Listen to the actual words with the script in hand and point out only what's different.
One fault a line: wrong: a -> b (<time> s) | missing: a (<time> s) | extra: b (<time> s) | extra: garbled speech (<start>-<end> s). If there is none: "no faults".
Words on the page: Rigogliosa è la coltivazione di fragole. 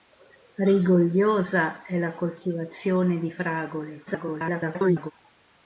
extra: garbled speech (4.1-5.1 s)